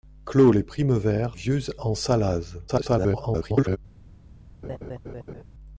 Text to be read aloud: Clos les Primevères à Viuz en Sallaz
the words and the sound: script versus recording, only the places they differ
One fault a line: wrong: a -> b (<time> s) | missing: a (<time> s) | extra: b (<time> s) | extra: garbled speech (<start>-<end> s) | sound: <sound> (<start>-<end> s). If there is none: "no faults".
missing: à (1.4 s)
extra: garbled speech (2.7-3.8 s)
sound: laugh (4.6-5.4 s)